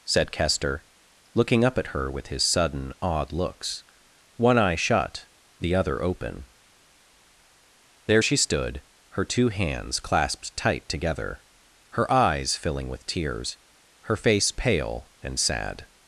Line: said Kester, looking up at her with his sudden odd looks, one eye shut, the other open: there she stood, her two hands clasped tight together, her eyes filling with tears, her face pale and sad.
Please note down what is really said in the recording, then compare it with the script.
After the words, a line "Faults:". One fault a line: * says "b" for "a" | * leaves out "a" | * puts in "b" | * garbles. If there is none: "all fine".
said Kester, looking up at her with his sudden odd looks, one eye shut, the other open: there she stood, her two hands clasped tight together, her eyes filling with tears, her face pale and sad.
Faults:
all fine